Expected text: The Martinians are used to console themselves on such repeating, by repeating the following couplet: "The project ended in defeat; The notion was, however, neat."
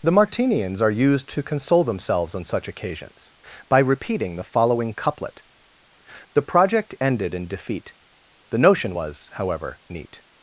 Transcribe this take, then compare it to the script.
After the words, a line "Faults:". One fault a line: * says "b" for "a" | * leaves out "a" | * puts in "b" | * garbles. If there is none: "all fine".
The Martinians are used to console themselves on such occasions, by repeating the following couplet: "The project ended in defeat; The notion was, however, neat."
Faults:
* says "occasions" for "repeating"